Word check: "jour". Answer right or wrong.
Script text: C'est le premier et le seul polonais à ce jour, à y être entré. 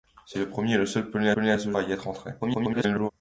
wrong